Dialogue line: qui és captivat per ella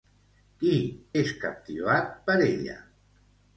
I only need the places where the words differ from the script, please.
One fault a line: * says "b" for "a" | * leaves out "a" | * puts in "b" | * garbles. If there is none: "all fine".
all fine